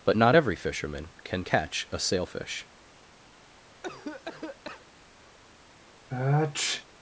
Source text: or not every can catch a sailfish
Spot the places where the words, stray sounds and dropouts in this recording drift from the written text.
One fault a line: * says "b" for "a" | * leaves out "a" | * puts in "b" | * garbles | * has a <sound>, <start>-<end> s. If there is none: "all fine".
* says "but" for "or"
* puts in "fisherman"
* has a cough, 3.8-4.9 s
* has a sniff, 6.1-6.9 s